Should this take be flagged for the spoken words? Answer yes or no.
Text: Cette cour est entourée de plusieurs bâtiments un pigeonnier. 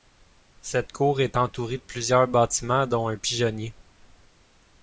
yes